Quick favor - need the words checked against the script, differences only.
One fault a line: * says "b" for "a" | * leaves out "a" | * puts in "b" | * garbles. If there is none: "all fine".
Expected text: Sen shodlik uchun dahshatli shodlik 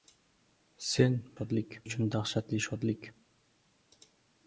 all fine